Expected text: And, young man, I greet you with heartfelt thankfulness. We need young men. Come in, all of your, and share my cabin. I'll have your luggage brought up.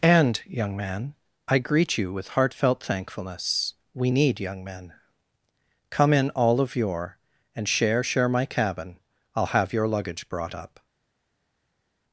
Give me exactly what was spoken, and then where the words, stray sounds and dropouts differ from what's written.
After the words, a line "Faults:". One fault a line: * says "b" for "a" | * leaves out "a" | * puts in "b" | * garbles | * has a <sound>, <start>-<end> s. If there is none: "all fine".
And, young man, I greet you with heartfelt thankfulness. We need young men. Come in, all of your, and share share my cabin. I'll have your luggage brought up.
Faults:
* puts in "share"